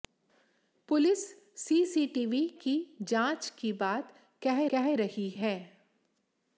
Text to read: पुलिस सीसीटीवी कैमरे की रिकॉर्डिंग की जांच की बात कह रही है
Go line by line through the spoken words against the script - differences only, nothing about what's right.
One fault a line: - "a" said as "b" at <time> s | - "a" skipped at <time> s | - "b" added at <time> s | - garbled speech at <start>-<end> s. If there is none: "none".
- "कैमरे" skipped at 2.4 s
- "रिकॉर्डिंग की" skipped at 2.8 s
- "कह" added at 4.7 s